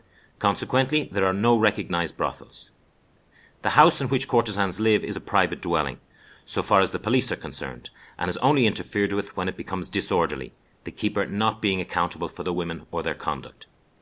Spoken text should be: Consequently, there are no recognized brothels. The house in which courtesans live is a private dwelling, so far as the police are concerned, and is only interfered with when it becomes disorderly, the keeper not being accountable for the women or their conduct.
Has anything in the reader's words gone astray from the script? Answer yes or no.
no